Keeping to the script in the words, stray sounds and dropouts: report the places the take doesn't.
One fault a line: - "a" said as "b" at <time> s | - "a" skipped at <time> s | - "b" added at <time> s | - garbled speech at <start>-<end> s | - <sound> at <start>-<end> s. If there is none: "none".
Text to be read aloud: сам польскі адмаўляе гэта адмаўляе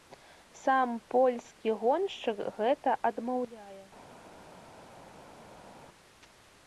- "адмаўляе" said as "гоншчык" at 1.8 s